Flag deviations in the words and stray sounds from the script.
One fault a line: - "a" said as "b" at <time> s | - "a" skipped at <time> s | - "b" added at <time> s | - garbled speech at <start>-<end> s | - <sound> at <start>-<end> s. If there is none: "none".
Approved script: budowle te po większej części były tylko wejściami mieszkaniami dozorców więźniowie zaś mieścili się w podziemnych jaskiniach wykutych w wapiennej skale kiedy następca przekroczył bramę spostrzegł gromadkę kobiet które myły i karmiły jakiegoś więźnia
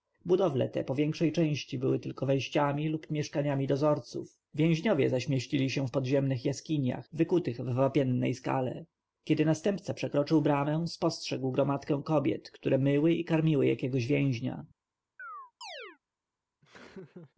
- "lub" added at 2.9 s
- chirp at 15.2-16.0 s
- laugh at 16.6-17.3 s